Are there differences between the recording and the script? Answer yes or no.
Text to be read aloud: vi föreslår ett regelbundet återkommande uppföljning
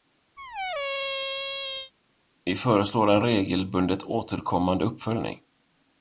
yes